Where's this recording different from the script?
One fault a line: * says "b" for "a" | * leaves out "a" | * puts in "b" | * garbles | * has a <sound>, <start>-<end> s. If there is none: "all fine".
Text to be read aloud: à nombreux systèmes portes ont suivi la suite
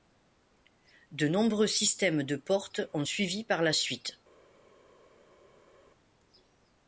* says "de" for "à"
* puts in "de"
* puts in "par"